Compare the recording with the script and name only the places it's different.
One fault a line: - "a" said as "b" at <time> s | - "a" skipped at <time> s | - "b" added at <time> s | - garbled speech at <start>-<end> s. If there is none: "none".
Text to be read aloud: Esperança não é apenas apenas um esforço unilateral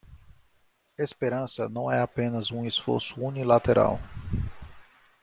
- "apenas" skipped at 2.5 s